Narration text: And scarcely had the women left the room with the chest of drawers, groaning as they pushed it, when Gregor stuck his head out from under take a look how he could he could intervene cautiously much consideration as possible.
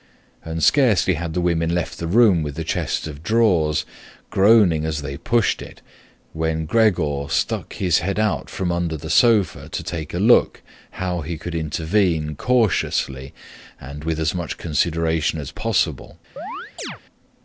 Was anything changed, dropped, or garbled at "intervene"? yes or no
yes